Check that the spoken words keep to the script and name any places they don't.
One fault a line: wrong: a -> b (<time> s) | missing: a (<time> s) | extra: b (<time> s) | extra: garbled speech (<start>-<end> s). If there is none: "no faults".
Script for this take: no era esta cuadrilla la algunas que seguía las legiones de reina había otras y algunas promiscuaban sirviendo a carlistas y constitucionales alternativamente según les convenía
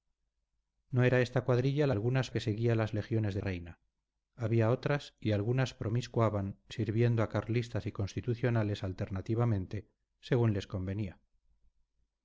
no faults